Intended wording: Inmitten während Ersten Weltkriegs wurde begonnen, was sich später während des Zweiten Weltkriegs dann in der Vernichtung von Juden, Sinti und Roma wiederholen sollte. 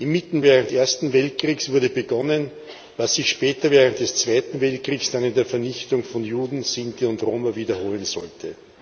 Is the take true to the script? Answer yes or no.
yes